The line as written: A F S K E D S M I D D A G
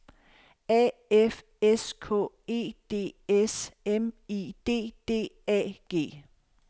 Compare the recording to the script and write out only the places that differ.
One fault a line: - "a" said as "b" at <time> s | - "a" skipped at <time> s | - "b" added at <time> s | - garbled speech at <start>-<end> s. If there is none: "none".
none